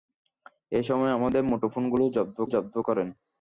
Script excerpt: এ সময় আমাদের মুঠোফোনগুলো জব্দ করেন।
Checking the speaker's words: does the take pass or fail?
fail